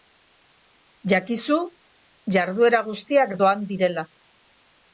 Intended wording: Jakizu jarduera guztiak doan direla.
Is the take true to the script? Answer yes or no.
yes